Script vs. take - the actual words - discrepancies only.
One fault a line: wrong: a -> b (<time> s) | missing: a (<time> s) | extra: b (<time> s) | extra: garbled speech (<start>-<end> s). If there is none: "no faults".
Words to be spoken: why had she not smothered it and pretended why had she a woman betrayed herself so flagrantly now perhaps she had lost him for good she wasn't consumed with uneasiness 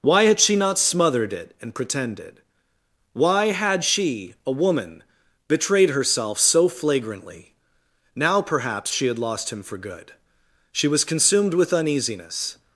wrong: wasn't -> was (10.9 s)